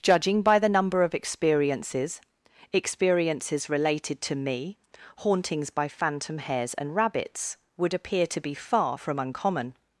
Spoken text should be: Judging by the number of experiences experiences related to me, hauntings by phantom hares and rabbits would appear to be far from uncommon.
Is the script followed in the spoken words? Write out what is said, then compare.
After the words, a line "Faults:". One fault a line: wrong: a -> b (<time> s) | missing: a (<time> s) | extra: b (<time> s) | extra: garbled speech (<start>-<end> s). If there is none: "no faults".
Judging by the number of experiences experiences related to me, hauntings by phantom hares and rabbits would appear to be far from uncommon.
Faults:
no faults